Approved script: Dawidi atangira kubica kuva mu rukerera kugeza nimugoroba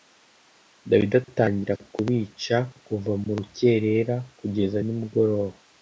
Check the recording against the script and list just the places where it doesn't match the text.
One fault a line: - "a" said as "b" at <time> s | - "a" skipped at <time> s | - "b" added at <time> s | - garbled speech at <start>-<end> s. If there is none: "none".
none